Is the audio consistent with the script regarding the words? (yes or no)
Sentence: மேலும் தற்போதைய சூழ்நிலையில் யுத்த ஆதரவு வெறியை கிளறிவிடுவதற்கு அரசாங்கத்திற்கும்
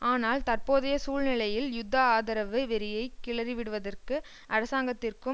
no